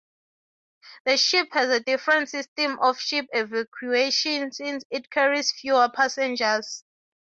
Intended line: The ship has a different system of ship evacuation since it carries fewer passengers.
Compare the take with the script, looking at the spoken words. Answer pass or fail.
pass